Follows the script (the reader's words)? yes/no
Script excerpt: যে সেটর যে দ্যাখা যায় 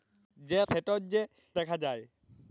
yes